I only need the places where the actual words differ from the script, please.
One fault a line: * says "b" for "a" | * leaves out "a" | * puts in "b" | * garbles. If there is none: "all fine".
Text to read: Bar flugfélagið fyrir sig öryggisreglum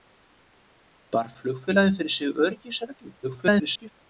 * garbles